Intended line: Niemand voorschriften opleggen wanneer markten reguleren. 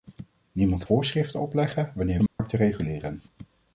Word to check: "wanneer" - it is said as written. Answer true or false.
true